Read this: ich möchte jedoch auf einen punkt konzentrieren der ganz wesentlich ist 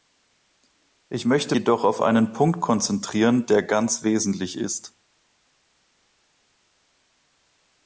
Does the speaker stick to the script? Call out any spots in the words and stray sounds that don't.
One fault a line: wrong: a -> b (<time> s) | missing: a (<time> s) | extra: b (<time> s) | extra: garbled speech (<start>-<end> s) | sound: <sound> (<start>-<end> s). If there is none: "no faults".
no faults